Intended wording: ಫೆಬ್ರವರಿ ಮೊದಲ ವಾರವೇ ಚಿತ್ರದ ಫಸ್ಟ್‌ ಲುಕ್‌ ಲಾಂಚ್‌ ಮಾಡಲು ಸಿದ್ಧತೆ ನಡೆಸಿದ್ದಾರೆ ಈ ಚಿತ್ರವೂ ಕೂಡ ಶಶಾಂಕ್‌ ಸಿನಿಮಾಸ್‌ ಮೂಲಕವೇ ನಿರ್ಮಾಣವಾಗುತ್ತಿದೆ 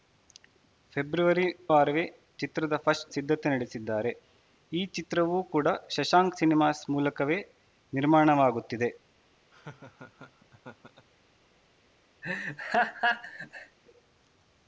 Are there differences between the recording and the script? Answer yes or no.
yes